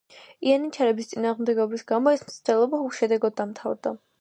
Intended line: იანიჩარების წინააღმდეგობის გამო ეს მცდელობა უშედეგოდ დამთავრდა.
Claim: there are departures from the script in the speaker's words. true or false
false